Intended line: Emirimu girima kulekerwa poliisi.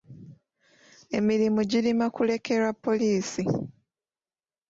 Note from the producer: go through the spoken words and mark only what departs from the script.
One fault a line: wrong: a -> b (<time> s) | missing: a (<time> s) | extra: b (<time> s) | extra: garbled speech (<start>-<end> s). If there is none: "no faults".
no faults